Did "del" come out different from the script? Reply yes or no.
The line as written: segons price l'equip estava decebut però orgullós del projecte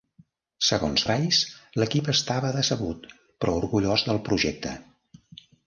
no